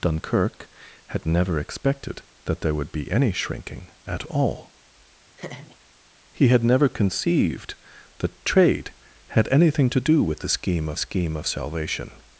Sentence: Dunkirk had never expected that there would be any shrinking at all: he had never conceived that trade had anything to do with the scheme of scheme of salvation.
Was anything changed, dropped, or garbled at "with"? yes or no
no